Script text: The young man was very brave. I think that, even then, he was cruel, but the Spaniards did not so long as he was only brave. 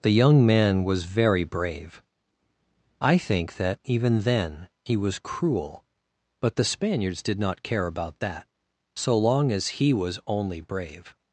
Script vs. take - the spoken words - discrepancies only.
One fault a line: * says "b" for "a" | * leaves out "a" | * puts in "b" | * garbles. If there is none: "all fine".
* puts in "care about that"